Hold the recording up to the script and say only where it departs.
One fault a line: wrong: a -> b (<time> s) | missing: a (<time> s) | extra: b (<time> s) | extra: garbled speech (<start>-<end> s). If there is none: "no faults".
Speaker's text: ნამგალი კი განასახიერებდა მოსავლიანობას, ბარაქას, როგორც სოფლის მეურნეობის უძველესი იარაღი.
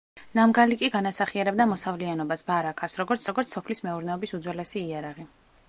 extra: როგორც (3.3 s)